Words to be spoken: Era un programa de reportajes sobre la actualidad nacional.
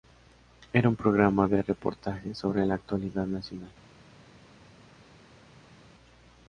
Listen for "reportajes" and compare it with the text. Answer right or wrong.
right